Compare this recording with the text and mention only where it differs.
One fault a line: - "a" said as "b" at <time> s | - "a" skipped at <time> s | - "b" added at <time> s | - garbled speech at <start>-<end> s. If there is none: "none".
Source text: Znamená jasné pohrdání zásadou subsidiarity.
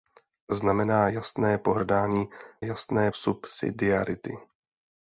- "zásadou" said as "jasné" at 2.6 s